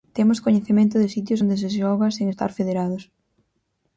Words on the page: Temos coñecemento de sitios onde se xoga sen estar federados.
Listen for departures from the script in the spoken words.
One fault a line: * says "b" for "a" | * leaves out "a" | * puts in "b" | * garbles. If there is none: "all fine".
all fine